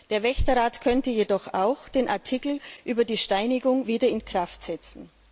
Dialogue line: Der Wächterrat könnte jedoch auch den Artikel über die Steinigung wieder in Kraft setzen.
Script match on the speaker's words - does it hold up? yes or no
yes